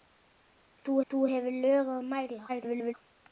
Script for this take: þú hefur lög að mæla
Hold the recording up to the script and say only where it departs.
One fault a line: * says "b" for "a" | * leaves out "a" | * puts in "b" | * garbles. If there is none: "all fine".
* puts in "þú"
* garbles